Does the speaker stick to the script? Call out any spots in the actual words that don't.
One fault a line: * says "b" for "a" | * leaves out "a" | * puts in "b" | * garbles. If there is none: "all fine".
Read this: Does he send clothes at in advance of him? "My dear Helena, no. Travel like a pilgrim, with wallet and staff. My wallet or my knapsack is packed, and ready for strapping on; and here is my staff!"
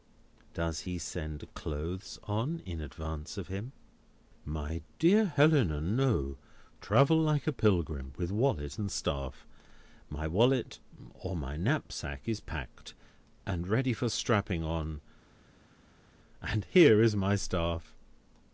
* says "on" for "at"